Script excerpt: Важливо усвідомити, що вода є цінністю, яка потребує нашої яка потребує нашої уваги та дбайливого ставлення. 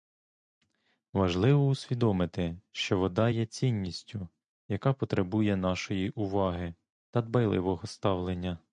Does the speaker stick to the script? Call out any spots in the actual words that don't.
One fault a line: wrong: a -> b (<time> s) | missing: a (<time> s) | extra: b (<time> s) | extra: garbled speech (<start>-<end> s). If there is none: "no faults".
missing: яка потребує нашої (6.1 s)